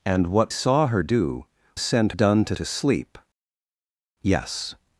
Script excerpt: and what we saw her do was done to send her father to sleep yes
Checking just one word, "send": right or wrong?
wrong